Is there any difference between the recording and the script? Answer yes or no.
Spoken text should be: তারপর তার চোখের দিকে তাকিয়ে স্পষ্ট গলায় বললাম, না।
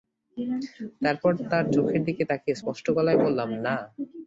no